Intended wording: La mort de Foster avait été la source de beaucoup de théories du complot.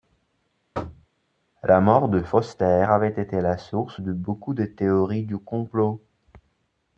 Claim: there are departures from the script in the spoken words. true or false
false